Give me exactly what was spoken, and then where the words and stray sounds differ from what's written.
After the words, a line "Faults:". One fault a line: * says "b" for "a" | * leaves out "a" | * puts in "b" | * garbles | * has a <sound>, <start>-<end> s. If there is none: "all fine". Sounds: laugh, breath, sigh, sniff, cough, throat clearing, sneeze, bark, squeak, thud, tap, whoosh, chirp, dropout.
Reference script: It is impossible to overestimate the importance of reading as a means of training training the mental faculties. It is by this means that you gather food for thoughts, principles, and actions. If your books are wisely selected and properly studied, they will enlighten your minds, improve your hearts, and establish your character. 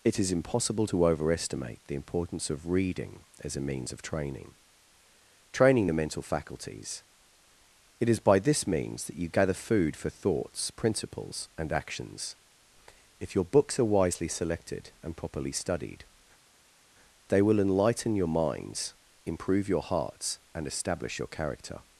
It is impossible to overestimate the importance of reading as a means of training training the mental faculties. It is by this means that you gather food for thoughts, principles, and actions. If your books are wisely selected and properly studied, they will enlighten your minds, improve your hearts, and establish your character.
Faults:
all fine